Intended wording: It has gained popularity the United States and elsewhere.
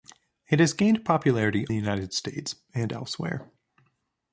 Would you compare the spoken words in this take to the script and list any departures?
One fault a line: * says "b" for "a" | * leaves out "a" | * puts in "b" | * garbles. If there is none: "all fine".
all fine